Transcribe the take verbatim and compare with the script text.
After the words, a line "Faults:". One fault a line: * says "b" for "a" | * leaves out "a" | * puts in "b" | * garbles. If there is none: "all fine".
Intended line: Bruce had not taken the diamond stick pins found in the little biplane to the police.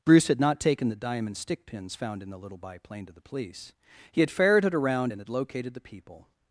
Bruce had not taken the diamond stick pins found in the little biplane to the police. He had ferreted around and had located the people
Faults:
* puts in "He had ferreted around and had located the people"